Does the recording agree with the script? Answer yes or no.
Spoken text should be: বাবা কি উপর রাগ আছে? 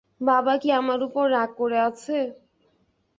no